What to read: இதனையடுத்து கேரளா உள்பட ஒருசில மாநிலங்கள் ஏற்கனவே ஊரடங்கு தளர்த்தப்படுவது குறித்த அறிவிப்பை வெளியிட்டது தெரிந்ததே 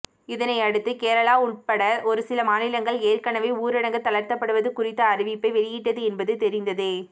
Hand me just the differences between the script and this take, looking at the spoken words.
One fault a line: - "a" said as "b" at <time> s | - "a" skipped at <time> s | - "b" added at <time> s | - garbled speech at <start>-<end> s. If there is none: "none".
- "என்பது" added at 6.1 s